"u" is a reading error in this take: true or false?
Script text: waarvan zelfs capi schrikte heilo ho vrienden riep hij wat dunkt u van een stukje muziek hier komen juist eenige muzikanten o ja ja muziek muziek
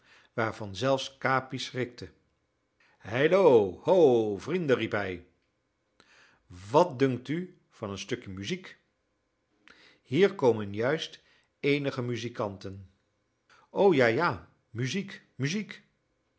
false